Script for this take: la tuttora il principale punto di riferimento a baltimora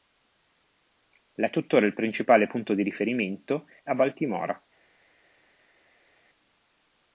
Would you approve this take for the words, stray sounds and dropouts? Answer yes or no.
yes